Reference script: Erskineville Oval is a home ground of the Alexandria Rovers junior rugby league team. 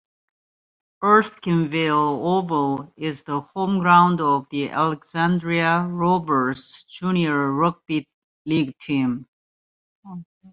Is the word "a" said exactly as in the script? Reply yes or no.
no